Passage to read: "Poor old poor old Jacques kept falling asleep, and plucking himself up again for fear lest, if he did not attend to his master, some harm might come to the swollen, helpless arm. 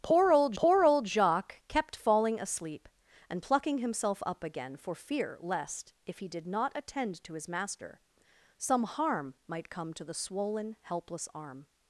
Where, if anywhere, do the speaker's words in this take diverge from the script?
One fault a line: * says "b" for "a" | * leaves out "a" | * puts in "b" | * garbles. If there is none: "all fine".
all fine